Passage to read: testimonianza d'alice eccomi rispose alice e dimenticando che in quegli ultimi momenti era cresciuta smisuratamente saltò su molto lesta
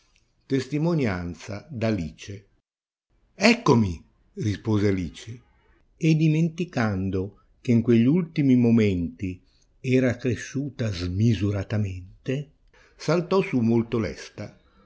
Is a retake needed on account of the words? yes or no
no